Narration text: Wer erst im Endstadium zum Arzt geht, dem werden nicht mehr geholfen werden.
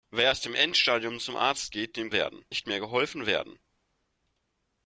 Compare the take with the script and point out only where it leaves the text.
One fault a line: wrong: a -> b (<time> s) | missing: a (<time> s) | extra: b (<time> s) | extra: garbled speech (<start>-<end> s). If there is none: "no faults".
no faults